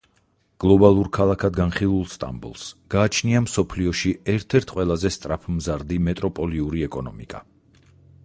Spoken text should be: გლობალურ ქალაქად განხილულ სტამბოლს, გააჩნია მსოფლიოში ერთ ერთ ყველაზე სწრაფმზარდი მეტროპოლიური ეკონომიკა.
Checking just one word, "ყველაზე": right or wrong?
right